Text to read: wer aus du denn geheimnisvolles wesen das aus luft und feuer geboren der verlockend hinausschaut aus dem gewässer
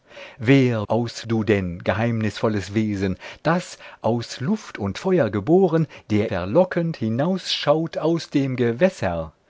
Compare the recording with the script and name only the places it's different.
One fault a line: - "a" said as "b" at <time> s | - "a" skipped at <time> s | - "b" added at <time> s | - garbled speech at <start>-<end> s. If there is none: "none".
none